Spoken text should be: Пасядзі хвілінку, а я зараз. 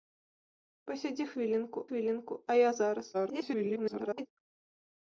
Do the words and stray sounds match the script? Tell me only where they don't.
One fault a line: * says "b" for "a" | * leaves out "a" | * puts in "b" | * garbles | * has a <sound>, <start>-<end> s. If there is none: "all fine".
* puts in "хвілінку"
* garbles